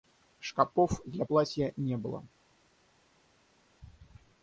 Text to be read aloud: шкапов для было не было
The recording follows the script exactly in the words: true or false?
false